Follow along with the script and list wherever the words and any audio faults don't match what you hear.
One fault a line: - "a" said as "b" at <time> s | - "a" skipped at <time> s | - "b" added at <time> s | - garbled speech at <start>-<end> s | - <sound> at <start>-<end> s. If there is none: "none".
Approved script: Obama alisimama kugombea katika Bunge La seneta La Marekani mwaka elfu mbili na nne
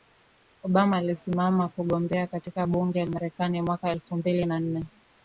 - "La seneta La" skipped at 3.0 s